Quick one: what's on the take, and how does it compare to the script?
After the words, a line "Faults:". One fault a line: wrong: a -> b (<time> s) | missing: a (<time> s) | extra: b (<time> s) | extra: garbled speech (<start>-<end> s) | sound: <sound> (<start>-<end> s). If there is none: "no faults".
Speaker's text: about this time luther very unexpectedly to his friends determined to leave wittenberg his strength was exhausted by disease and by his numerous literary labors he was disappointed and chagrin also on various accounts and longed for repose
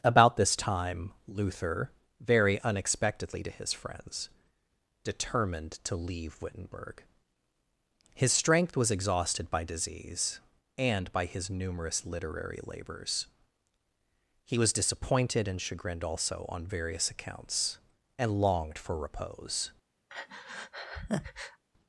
about this time luther very unexpectedly to his friends determined to leave wittenberg his strength was exhausted by disease and by his numerous literary labors he was disappointed and chagrined also on various accounts and longed for repose
Faults:
wrong: chagrin -> chagrined (15.6 s)
sound: breath (20.1-21.6 s)